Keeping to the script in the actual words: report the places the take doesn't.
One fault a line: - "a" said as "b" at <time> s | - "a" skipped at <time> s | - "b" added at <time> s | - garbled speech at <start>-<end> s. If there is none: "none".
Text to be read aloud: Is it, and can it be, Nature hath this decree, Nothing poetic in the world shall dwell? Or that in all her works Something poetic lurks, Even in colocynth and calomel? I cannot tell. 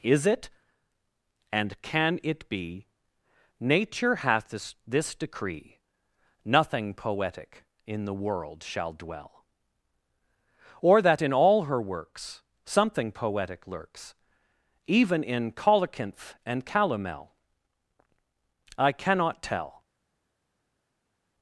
- "this" added at 4.9 s